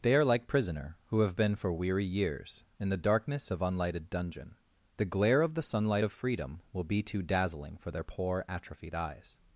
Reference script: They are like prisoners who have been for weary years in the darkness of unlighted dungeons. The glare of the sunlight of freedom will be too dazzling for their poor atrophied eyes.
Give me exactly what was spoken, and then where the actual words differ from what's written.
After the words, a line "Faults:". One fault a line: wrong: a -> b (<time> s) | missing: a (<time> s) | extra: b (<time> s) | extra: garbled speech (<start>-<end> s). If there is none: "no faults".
They are like prisoner who have been for weary years in the darkness of unlighted dungeon. The glare of the sunlight of freedom will be too dazzling for their poor atrophied eyes.
Faults:
wrong: prisoners -> prisoner (0.5 s)
wrong: dungeons -> dungeon (4.1 s)